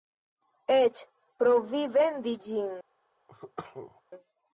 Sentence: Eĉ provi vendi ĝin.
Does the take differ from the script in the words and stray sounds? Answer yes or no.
yes